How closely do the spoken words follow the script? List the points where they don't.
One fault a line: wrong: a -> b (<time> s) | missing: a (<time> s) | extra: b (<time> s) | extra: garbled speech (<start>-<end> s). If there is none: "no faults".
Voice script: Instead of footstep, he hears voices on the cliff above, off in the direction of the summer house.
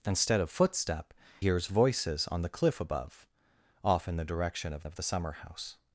missing: he (1.1 s)
extra: of (4.8 s)